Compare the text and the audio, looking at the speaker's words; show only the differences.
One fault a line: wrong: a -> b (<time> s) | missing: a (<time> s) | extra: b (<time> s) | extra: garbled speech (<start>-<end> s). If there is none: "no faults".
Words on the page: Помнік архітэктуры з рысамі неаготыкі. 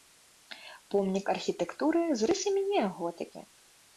no faults